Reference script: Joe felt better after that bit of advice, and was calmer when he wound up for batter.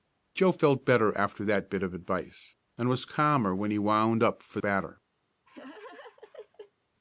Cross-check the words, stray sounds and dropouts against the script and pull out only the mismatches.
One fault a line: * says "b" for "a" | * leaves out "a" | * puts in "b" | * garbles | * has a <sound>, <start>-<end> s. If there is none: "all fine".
* has a laugh, 5.5-6.7 s